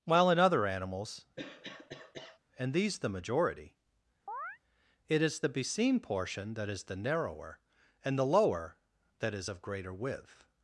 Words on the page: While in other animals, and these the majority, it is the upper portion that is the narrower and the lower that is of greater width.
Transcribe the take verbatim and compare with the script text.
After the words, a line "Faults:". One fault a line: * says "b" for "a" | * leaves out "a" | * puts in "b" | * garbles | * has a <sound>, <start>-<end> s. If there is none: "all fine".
While in other animals, and these the majority, it is the beseen portion that is the narrower and the lower that is of greater width.
Faults:
* has a cough, 1.4-2.4 s
* has a chirp, 4.3-4.6 s
* says "beseen" for "upper"